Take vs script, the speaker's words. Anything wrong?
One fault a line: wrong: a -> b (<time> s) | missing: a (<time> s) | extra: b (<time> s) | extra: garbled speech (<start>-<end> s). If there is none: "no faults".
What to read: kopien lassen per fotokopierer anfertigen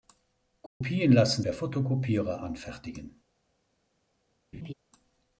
no faults